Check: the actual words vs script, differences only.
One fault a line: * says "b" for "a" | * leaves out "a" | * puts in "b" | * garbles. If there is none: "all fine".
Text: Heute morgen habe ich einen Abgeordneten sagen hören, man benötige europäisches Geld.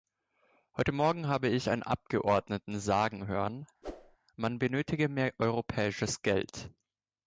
* puts in "mehr"